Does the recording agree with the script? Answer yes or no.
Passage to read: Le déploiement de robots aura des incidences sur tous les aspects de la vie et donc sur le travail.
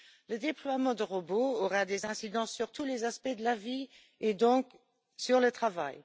yes